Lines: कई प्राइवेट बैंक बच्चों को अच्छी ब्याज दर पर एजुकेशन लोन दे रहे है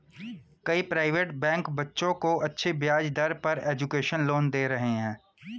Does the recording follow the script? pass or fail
pass